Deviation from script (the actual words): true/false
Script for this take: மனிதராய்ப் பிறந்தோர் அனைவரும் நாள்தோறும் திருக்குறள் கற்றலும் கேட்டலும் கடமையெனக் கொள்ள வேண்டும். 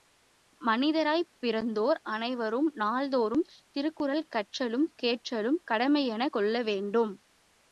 false